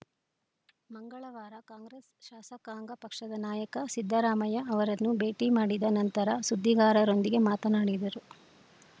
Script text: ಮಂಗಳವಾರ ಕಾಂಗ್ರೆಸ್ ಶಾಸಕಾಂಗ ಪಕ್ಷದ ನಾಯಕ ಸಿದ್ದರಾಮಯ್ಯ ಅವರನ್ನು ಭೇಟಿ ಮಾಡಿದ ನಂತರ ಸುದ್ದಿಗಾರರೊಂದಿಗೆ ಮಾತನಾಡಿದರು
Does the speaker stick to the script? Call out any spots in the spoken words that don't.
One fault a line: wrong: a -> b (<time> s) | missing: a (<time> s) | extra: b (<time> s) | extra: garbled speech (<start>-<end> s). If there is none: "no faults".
no faults